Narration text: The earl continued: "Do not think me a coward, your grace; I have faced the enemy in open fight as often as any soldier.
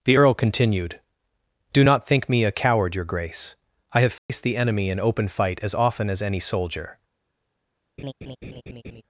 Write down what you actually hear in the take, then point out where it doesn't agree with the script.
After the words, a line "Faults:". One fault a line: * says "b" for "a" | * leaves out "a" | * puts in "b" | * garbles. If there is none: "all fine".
The earl continued: "Do not think me a coward, your grace; I have faced the enemy in open fight as often as any soldier.
Faults:
all fine